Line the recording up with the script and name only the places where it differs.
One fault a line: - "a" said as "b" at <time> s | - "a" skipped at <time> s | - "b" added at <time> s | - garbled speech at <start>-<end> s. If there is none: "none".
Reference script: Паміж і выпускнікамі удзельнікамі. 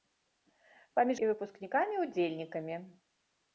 none